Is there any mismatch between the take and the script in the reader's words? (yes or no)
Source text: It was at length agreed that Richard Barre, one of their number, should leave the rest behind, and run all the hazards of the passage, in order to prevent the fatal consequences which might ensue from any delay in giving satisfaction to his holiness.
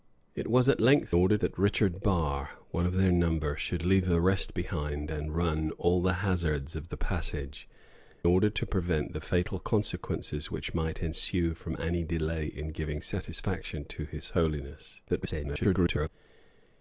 yes